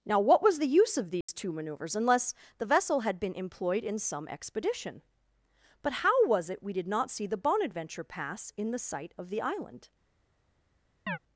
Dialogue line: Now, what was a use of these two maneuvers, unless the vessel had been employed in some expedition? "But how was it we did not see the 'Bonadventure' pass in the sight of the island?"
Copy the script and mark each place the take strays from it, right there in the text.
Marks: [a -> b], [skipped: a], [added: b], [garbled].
Now, what was [a -> the] use of these two maneuvers, unless the vessel had been employed in some expedition? "But how was it we did not see the 'Bonadventure' pass in the sight of the island?"